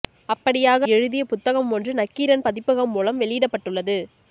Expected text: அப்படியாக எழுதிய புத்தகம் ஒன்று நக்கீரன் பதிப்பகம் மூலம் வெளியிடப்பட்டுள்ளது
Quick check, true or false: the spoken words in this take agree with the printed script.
true